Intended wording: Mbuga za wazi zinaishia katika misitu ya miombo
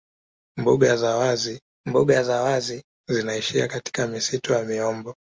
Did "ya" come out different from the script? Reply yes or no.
no